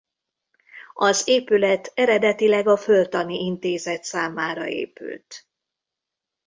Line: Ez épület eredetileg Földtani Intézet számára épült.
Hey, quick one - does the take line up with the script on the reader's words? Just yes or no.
no